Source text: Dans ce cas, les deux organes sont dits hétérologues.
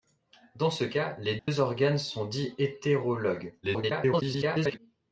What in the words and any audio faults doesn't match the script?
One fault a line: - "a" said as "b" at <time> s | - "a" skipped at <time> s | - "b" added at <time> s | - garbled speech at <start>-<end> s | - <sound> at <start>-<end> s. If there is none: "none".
- dropout at 1.4-1.5 s
- garbled speech at 3.6-4.8 s